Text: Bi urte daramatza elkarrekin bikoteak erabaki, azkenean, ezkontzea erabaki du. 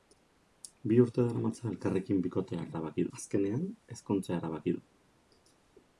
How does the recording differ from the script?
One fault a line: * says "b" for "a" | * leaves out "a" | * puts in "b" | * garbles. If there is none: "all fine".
all fine